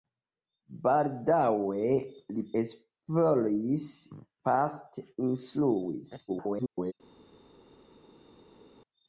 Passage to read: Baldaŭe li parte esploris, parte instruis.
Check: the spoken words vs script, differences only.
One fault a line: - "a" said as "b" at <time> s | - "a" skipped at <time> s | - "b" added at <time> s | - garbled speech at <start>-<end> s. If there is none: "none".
- "parte" skipped at 2.5 s
- garbled speech at 6.3-6.9 s